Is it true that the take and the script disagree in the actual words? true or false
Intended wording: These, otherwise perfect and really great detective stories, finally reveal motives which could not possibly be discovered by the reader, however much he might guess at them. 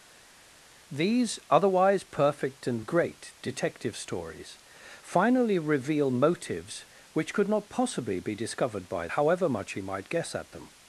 true